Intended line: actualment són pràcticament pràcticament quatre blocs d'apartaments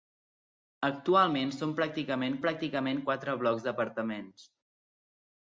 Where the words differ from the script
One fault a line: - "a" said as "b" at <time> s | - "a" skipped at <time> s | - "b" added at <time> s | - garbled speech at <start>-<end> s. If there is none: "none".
none